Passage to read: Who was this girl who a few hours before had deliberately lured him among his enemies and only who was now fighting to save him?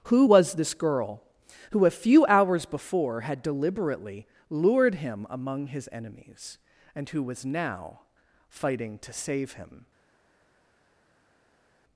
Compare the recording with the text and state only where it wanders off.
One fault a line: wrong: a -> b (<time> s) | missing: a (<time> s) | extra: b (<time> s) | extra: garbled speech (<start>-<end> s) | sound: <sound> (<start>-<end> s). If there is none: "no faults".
missing: only (7.1 s)